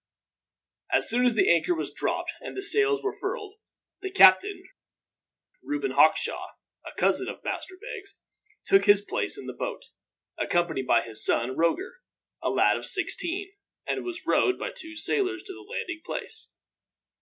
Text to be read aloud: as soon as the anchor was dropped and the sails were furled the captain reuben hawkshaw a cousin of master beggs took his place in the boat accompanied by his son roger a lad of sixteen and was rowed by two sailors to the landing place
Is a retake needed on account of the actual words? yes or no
no